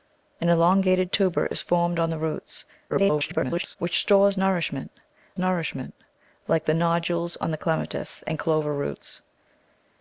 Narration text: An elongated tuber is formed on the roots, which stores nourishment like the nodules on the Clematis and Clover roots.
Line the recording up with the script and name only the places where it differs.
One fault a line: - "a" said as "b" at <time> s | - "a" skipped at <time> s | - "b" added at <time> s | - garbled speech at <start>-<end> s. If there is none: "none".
- garbled speech at 2.9-3.8 s
- "nourishment" added at 5.4 s